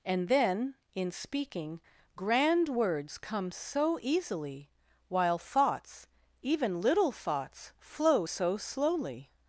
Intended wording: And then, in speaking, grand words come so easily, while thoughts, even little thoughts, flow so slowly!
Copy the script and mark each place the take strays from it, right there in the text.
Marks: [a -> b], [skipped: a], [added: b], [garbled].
And then, in speaking, grand words come so easily, while thoughts, even little thoughts, flow so slowly!